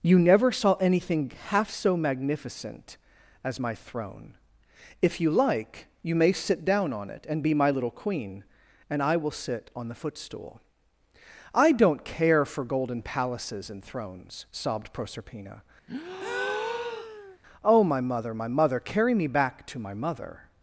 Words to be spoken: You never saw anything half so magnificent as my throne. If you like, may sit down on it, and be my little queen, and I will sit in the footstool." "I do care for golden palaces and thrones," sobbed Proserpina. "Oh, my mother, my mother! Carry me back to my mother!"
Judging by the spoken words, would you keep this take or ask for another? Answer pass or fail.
fail